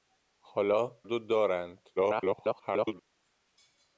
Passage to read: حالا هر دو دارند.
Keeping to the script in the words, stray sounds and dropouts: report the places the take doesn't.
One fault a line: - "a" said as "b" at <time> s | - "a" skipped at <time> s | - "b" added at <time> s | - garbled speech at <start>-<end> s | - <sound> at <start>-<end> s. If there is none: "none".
- "هر" skipped at 1.0 s
- garbled speech at 2.0-3.0 s